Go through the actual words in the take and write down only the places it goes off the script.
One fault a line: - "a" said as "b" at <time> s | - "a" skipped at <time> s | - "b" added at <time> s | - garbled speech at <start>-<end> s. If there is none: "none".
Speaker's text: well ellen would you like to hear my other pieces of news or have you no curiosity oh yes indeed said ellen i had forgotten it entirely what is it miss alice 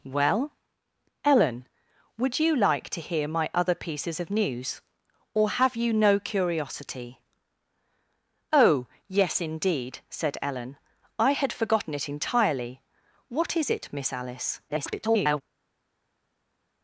- garbled speech at 14.7-15.4 s